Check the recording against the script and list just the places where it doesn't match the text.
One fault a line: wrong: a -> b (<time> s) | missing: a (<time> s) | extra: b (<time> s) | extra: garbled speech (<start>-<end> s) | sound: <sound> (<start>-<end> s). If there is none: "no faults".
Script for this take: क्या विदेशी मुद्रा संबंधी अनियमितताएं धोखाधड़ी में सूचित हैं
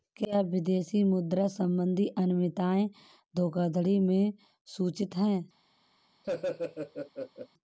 sound: laugh (6.2-7.5 s)